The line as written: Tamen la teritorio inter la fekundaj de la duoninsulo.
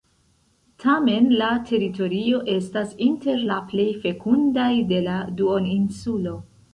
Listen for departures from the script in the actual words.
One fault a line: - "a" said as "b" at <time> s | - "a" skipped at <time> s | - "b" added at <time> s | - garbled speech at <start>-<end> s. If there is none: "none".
- "estas" added at 2.5 s
- "plej" added at 3.7 s